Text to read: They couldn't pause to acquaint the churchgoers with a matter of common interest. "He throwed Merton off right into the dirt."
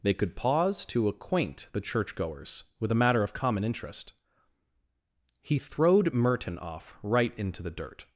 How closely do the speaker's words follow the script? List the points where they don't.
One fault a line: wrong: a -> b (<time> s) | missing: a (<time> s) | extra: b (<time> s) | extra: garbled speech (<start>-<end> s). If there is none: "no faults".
wrong: couldn't -> could (0.1 s)